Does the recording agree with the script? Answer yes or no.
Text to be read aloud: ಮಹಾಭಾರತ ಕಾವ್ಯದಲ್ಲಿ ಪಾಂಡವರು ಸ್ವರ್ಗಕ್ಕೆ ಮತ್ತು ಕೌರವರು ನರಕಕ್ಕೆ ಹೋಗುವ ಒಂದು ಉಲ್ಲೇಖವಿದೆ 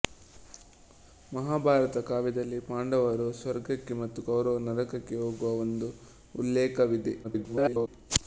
no